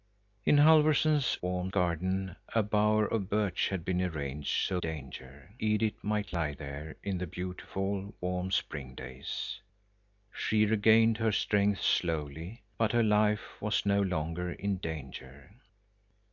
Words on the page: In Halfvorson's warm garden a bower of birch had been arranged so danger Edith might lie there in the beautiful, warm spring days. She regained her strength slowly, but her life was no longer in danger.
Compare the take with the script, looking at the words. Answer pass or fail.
pass